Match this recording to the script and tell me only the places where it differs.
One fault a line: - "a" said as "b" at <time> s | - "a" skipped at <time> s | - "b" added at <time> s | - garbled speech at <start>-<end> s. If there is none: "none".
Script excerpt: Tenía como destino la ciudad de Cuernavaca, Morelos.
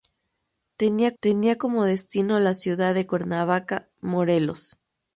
- "tenía" added at 1.2 s